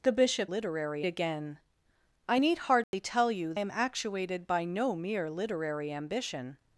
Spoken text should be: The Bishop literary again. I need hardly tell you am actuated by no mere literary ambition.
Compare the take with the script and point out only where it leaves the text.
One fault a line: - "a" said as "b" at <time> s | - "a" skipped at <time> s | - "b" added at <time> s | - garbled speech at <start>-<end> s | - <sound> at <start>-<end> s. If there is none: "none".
- dropout at 2.8-2.9 s